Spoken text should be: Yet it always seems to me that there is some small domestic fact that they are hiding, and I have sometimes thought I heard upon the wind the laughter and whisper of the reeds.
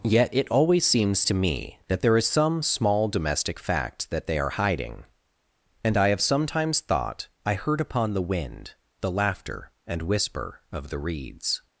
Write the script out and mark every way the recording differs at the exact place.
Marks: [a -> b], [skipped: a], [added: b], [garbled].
Yet it always seems to me that there is some small domestic fact that they are hiding, and I have sometimes thought I heard upon the wind the laughter and whisper of the reeds.